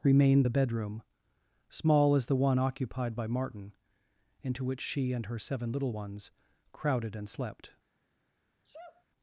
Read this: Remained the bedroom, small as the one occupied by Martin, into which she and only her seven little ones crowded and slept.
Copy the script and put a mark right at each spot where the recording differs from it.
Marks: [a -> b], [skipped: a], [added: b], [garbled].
Remained the bedroom, small as the one occupied by Martin, into which she and [skipped: only] her seven little ones crowded and slept.